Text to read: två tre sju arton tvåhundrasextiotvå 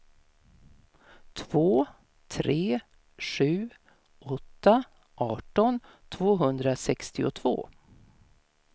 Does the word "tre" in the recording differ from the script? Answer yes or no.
no